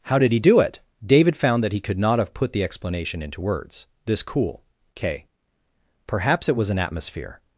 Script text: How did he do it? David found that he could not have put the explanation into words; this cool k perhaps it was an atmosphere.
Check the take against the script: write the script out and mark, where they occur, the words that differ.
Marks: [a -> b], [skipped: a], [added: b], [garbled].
How did he do it? David found that he could not have put the explanation into words; this cool k perhaps it was an atmosphere.